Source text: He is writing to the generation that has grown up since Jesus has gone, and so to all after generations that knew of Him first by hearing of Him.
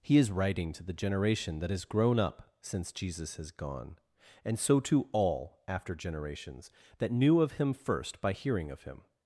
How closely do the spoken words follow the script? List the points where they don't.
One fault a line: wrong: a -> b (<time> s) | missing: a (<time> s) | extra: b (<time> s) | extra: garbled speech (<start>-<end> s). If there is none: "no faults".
no faults